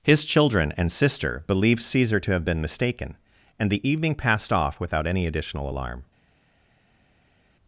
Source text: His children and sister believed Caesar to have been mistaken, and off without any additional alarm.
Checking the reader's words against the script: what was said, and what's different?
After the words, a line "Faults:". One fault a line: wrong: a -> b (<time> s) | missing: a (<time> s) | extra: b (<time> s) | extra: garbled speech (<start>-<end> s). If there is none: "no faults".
His children and sister believed Caesar to have been mistaken, and the evening passed off without any additional alarm.
Faults:
extra: the evening passed (3.7 s)